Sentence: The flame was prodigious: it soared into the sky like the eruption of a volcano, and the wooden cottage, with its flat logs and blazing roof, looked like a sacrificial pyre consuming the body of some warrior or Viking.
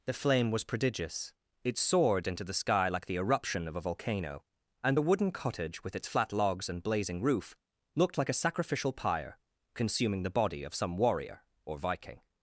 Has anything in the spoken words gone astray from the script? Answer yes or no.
no